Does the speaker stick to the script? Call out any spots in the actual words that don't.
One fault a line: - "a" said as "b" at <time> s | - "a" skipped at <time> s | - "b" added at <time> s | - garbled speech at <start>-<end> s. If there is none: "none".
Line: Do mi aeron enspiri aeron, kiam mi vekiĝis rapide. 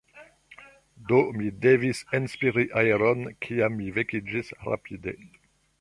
- "aeron" said as "devis" at 1.6 s